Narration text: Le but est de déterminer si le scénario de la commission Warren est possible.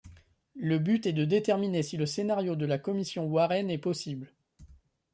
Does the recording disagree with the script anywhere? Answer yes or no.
no